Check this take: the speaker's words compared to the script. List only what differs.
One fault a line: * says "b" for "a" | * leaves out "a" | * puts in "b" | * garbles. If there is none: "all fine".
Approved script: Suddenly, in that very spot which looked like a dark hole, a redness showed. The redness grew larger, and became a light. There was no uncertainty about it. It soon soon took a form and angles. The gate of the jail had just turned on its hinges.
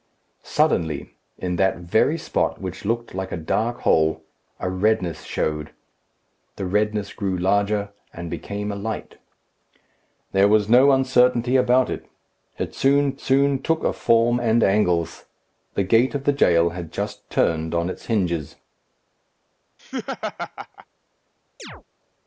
all fine